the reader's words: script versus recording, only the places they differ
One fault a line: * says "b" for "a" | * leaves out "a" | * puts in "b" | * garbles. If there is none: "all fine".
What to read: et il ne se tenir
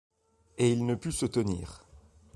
* puts in "put"